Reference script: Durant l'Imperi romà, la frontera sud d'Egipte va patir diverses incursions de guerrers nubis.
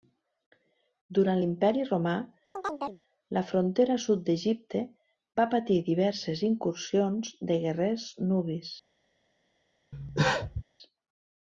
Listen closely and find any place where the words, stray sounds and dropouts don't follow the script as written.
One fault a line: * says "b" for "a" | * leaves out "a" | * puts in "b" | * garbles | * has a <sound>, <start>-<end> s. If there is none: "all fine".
* has a chirp, 2.6-3.0 s
* has a cough, 9.9-10.6 s